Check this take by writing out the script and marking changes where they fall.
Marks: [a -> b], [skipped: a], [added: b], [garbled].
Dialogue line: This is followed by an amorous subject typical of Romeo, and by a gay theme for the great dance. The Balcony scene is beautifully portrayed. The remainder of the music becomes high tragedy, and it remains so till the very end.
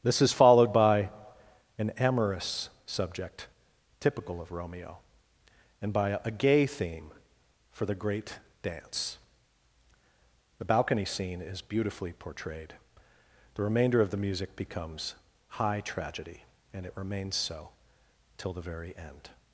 This is followed by an amorous subject typical of Romeo, and by a gay theme for the great dance. The Balcony scene is beautifully portrayed. The remainder of the music becomes high tragedy, and it remains so till the very end.